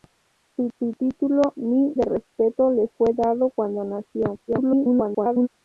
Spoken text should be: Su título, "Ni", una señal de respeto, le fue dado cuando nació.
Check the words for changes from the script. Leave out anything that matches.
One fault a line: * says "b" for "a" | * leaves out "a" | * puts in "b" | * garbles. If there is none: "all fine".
* puts in "su"
* leaves out "una señal"
* garbles